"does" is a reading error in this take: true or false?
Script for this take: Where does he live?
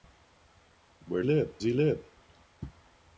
true